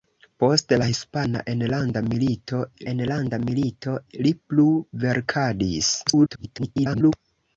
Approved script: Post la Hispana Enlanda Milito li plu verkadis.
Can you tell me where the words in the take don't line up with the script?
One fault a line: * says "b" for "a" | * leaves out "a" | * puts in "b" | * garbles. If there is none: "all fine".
* puts in "Enlanda Milito"
* garbles